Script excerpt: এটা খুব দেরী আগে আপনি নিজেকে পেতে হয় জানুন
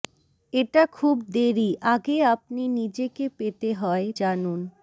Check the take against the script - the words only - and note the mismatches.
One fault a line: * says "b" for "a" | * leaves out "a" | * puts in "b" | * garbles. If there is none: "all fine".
all fine